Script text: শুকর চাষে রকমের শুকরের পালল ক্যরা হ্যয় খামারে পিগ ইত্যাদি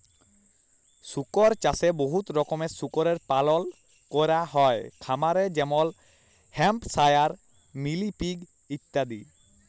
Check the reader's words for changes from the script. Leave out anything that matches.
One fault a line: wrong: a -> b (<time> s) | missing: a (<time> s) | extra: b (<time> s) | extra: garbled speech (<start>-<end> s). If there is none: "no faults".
extra: বহুত (2.0 s)
extra: যেমল হ্যাম্পশায়ার মিলি (5.6 s)